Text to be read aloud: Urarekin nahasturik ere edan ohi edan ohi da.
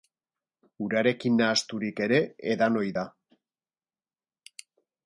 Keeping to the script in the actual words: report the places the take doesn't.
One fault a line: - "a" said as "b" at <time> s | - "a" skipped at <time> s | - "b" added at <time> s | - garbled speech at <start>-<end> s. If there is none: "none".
- "edan ohi" skipped at 3.0 s